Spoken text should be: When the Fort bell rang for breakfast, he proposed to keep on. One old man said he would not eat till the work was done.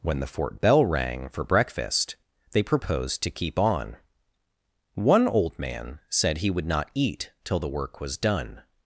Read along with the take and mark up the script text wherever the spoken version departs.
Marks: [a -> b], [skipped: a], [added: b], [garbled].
When the Fort bell rang for breakfast, [he -> they] proposed to keep on. One old man said he would not eat till the work was done.